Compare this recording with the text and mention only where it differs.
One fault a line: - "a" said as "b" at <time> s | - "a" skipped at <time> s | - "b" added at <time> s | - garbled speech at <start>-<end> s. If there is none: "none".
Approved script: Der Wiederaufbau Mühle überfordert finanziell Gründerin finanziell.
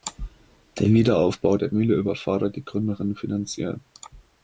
- "der" added at 1.6 s
- "finanziell" said as "die" at 2.6 s